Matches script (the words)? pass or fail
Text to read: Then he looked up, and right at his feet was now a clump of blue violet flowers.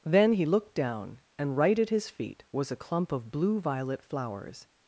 fail